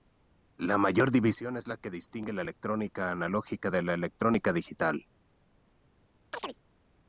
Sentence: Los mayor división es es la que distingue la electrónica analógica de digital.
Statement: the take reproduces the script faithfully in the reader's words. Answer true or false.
false